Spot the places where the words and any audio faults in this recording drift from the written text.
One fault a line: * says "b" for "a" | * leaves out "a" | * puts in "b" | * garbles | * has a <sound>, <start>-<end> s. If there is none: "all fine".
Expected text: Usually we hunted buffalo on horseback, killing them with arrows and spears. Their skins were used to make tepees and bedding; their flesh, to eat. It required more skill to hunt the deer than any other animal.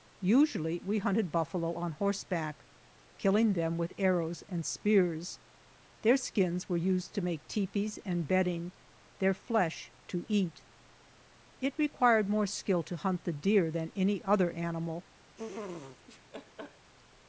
* has a laugh, 15.4-16.9 s